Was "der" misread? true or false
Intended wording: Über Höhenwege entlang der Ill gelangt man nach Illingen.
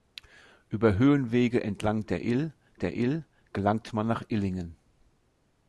false